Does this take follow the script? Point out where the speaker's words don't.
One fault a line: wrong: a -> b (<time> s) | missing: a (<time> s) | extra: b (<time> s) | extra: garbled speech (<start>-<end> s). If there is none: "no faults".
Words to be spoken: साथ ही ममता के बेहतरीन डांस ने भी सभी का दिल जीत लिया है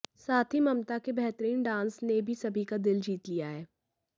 no faults